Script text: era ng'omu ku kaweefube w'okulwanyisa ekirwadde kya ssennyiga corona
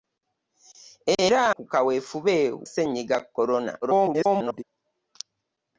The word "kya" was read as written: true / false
false